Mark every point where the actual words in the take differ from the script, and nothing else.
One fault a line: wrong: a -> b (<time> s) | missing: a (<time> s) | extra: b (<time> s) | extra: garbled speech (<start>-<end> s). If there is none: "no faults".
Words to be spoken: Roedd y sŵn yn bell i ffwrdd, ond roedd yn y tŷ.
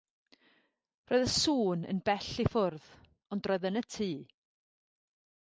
no faults